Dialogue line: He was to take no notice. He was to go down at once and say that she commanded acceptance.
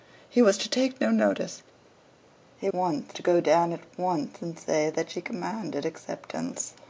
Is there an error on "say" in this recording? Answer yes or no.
no